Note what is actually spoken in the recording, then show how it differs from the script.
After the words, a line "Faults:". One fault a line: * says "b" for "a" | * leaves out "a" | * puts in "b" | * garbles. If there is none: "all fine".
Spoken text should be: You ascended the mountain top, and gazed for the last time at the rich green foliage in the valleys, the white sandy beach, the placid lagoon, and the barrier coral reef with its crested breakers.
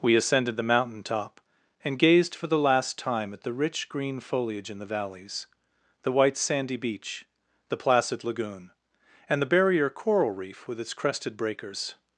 We ascended the mountain top, and gazed for the last time at the rich green foliage in the valleys, the white sandy beach, the placid lagoon, and the barrier coral reef with its crested breakers.
Faults:
* says "We" for "You"